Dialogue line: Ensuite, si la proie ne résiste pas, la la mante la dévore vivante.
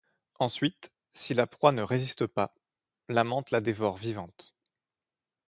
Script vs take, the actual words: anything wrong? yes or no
yes